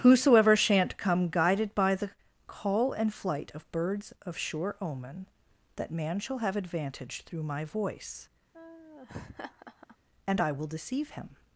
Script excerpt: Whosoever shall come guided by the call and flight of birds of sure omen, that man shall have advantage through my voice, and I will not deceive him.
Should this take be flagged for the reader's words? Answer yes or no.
yes